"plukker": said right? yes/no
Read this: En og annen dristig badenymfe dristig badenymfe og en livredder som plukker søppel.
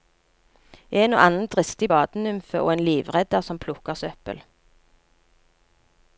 yes